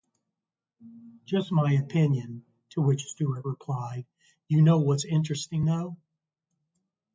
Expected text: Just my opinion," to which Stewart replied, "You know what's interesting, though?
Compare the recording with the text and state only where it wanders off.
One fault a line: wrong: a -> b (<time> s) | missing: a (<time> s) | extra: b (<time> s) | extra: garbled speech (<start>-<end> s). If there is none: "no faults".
no faults